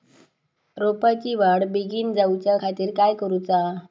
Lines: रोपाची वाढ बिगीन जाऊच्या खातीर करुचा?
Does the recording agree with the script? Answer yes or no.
no